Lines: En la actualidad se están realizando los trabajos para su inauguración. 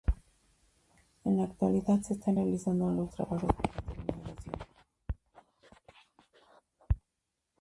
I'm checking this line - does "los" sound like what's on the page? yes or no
yes